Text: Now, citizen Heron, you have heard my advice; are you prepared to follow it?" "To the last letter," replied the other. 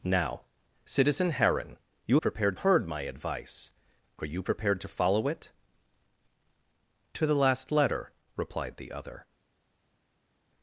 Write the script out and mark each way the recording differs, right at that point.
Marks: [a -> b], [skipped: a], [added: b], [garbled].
Now, citizen Heron, you [have -> prepared] heard my advice; are you prepared to follow it?" "To the last letter," replied the other.